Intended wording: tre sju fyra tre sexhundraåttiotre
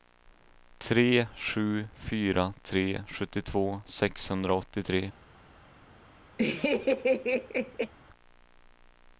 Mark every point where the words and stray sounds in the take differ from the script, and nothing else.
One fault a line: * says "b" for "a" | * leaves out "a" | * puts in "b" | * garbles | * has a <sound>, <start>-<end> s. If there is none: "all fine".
* puts in "sjuttiotvå"
* has a laugh, 6.4-7.9 s